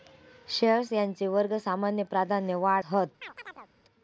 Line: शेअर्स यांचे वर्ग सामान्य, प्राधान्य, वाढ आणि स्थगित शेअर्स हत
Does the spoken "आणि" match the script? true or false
false